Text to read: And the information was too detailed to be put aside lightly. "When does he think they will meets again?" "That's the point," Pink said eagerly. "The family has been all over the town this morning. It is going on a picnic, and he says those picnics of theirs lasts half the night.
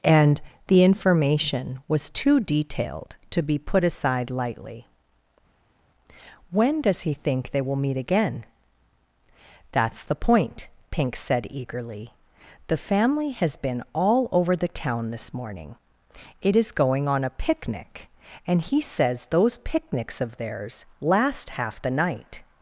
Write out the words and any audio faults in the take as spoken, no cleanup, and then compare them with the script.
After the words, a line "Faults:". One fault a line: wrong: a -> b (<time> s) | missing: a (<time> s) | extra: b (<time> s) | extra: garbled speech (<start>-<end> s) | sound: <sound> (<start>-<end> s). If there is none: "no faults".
And the information was too detailed to be put aside lightly. "When does he think they will meet again?" "That's the point," Pink said eagerly. "The family has been all over the town this morning. It is going on a picnic, and he says those picnics of theirs last half the night.
Faults:
wrong: meets -> meet (7.7 s)
wrong: lasts -> last (21.0 s)